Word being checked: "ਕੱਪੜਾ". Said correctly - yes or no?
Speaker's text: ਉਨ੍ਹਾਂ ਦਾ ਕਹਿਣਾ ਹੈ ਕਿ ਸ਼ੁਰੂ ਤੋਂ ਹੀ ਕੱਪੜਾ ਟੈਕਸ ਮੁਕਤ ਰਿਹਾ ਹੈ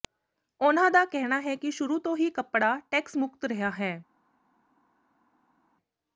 yes